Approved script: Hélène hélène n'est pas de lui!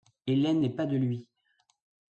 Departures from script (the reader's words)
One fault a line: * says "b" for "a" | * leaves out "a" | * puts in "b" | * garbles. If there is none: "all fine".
* leaves out "hélène"